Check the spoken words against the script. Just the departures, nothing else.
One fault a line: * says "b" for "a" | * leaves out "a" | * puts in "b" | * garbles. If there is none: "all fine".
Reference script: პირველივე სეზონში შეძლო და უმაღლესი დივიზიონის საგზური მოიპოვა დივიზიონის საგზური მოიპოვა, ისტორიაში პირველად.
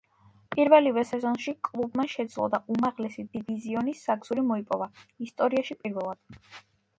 * puts in "კლუბმა"
* leaves out "დივიზიონის საგზური მოიპოვა"